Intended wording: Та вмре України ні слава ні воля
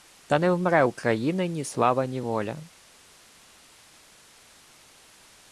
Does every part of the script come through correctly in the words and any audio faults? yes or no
no